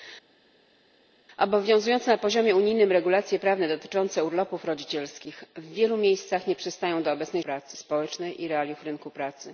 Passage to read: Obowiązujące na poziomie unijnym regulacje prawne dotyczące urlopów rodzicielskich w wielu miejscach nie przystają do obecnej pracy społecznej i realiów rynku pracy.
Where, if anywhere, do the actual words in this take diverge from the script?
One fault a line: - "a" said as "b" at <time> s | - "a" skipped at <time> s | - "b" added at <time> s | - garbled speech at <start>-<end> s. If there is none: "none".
none